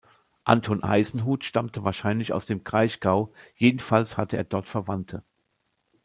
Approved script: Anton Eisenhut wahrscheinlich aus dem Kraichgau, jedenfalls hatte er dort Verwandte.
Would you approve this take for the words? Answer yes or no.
no